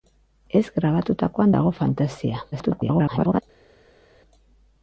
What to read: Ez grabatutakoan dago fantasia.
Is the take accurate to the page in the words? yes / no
no